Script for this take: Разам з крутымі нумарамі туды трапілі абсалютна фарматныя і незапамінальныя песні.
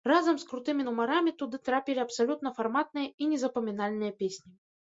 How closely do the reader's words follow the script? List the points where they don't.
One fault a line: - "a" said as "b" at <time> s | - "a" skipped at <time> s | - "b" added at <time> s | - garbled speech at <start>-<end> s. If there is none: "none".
none